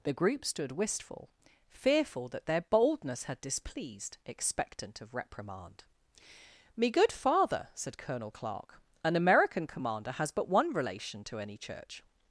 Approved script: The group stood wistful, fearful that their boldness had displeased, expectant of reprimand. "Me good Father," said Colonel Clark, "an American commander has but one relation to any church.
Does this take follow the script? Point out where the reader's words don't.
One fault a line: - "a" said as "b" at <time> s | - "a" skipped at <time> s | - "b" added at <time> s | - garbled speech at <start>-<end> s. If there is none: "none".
none